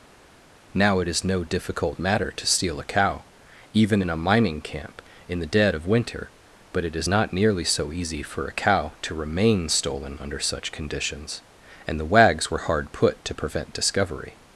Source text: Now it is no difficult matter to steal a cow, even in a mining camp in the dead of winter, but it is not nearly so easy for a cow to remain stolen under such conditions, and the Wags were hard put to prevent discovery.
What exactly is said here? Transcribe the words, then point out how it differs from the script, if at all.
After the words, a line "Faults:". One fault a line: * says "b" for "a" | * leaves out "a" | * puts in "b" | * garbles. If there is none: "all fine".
Now it is no difficult matter to steal a cow, even in a mining camp in the dead of winter, but it is not nearly so easy for a cow to remain stolen under such conditions, and the Wags were hard put to prevent discovery.
Faults:
all fine